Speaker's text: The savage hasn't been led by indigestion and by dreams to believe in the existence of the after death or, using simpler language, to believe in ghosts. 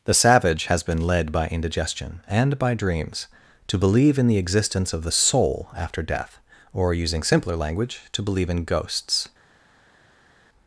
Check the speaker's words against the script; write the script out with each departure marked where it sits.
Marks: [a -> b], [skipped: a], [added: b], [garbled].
The savage [hasn't -> has] been led by indigestion and by dreams to believe in the existence of the [added: soul] after death or, using simpler language, to believe in ghosts.